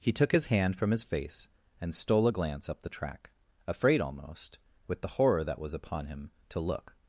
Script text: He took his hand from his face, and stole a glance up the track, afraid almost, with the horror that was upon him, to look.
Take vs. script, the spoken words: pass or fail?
pass